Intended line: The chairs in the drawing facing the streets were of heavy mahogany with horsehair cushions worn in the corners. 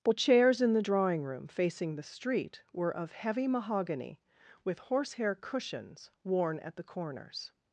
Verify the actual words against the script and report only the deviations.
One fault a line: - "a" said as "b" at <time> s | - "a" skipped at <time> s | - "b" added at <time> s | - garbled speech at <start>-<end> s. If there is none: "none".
- "room" added at 1.2 s
- "streets" said as "street" at 2.1 s
- "in" said as "at" at 6.6 s